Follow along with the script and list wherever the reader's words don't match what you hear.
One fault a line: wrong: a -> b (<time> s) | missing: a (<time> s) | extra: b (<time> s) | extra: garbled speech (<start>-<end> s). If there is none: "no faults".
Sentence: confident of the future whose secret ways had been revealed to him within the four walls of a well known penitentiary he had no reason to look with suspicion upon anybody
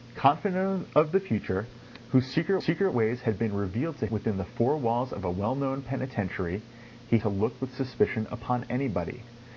extra: secret (2.6 s)
missing: him (4.1 s)
missing: had no reason (7.2 s)